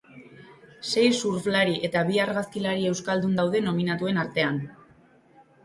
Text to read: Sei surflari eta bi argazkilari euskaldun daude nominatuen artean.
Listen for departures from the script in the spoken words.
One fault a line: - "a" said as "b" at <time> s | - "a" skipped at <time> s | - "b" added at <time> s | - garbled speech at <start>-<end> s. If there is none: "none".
none